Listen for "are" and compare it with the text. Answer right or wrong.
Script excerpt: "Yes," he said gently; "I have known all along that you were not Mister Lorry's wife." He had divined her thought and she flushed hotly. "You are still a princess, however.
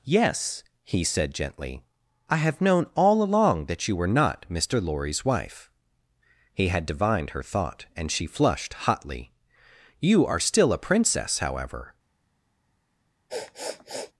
right